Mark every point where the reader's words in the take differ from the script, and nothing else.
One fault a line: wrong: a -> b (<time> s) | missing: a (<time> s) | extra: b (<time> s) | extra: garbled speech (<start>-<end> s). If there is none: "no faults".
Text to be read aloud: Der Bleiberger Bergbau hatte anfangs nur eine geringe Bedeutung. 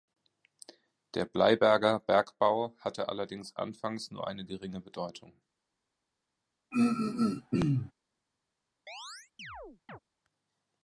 extra: allerdings (3.1 s)